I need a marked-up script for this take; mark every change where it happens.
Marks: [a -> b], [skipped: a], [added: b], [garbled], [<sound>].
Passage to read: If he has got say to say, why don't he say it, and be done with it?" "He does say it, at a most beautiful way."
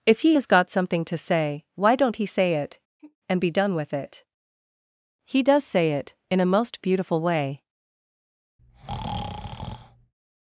If he has got [say -> something] to say, why don't he say it, [sigh] and be done with it?" "He does say it, [at -> in] a most beautiful way." [breath]